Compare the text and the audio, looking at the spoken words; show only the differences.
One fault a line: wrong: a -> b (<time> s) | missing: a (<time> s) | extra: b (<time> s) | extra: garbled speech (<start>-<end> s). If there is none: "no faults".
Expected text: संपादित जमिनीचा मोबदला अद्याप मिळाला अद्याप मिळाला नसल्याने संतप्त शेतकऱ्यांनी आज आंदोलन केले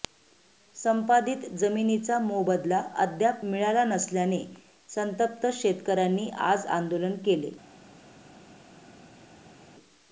missing: अद्याप मिळाला (3.8 s)